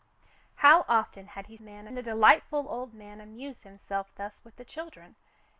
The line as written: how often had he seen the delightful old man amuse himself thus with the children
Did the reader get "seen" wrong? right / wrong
wrong